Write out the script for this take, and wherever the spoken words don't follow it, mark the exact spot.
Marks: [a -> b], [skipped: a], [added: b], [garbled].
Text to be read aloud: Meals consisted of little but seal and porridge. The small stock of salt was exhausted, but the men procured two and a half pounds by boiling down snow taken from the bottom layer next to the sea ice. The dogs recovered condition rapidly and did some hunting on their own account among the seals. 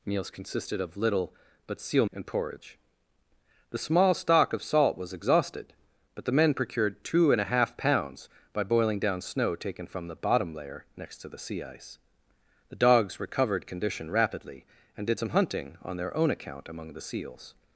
Meals consisted of little but seal and porridge. The small stock of salt was exhausted, but the men procured two and a half pounds by boiling down snow taken from the bottom layer next to the sea ice. The dogs recovered condition rapidly and did some hunting on their own account among the seals.